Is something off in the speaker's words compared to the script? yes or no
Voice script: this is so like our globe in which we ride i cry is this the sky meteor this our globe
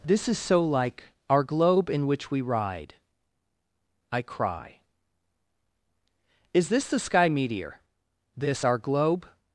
no